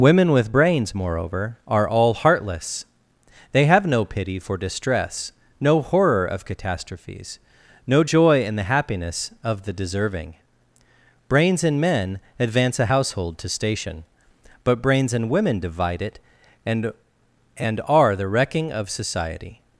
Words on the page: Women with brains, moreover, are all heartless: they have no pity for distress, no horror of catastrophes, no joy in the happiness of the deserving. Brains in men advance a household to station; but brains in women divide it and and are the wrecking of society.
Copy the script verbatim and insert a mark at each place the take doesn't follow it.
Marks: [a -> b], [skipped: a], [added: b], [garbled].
Women with brains, moreover, are all heartless: they have no pity for distress, no horror of catastrophes, no joy in the happiness of the deserving. Brains in men advance a household to station; but brains in women divide it and and are the wrecking of society.